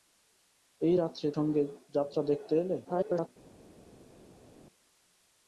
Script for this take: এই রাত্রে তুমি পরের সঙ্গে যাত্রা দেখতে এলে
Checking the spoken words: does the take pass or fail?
fail